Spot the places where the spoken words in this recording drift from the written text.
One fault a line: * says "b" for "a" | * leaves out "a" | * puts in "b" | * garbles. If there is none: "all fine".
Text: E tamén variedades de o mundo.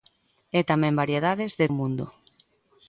all fine